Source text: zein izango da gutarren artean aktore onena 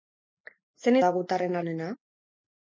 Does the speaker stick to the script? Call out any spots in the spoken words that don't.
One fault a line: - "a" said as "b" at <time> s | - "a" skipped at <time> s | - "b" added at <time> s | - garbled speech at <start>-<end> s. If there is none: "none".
- "izango" skipped at 1.0 s
- "artean aktore" skipped at 1.6 s